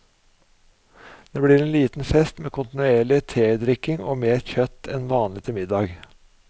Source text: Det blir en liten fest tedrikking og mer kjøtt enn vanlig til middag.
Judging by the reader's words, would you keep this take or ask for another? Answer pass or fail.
fail